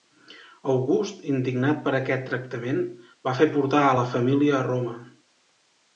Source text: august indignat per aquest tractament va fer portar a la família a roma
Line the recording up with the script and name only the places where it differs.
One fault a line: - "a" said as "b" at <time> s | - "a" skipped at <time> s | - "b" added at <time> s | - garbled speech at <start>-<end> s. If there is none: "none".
none